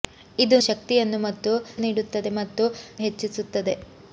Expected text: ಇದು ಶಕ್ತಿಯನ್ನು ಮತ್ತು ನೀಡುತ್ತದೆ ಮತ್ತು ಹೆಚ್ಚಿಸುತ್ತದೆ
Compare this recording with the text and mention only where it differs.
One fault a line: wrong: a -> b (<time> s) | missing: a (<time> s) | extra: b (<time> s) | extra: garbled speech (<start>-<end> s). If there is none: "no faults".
no faults